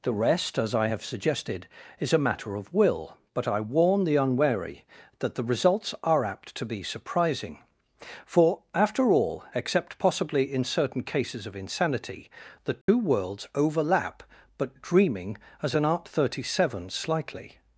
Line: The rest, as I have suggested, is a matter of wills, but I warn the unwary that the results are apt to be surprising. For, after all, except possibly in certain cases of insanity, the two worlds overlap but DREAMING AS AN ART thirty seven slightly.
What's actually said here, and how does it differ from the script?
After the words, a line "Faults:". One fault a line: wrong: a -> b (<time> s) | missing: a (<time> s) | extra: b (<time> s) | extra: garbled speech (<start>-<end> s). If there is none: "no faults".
The rest, as I have suggested, is a matter of will, but I warn the unwary that the results are apt to be surprising. For, after all, except possibly in certain cases of insanity, the two worlds overlap but DREAMING AS AN ART thirty seven slightly.
Faults:
wrong: wills -> will (2.7 s)